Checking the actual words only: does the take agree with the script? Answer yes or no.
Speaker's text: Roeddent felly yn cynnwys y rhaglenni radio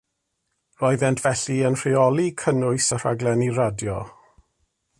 no